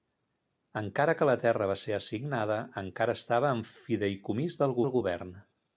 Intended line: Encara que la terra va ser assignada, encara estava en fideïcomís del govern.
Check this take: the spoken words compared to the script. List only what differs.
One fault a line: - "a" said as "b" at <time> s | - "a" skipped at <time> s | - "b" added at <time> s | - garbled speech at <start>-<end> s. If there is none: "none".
- "del" added at 4.8 s